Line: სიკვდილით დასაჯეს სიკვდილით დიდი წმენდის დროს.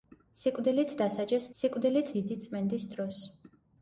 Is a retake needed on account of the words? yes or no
no